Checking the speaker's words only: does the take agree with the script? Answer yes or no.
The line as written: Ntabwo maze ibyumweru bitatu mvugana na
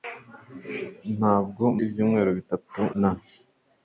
no